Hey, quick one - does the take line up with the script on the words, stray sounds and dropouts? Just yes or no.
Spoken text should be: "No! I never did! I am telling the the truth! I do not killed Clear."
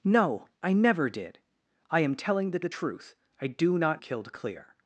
yes